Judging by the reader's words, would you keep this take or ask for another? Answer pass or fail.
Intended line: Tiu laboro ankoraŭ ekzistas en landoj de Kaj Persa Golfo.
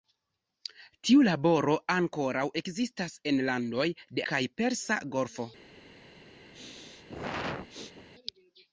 pass